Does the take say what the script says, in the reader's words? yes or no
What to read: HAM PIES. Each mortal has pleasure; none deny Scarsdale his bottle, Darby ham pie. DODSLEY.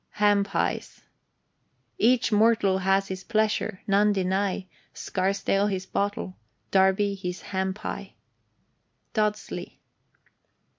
no